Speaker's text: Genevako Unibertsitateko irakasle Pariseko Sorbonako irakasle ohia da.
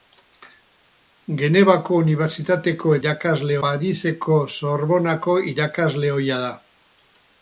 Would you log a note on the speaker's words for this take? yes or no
no